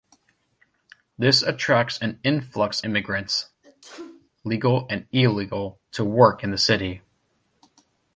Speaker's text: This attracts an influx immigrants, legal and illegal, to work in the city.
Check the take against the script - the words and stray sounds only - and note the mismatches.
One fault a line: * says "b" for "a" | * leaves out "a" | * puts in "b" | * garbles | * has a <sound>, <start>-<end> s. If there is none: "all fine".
* has a sneeze, 3.6-4.3 s